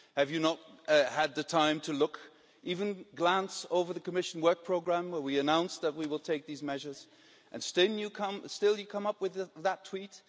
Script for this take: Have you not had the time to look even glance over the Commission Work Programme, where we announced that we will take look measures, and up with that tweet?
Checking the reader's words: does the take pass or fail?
fail